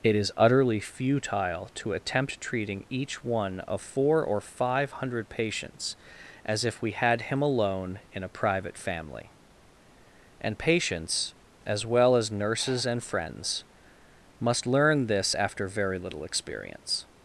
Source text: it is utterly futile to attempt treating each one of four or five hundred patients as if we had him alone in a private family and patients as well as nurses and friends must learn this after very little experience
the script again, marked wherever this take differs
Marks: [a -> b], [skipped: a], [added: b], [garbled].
it is utterly futile to attempt treating each one of four or five hundred patients as if we had him alone in a private family and patients as well as nurses and friends must learn this after very little experience